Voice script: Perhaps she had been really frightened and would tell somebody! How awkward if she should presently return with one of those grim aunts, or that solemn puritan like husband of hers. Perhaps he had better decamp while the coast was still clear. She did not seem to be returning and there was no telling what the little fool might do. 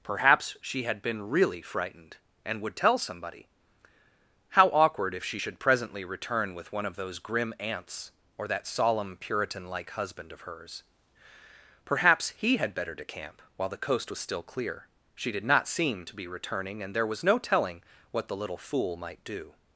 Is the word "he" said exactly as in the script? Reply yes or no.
yes